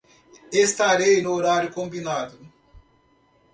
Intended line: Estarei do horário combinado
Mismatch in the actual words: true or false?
true